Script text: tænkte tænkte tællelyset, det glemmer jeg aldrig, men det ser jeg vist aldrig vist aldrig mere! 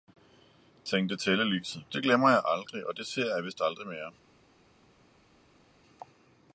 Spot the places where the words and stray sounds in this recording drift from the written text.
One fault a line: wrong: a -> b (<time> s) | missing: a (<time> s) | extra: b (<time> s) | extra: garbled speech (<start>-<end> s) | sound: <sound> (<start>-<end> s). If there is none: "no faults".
missing: tænkte (1.2 s)
wrong: men -> og (2.9 s)
missing: vist aldrig (3.9 s)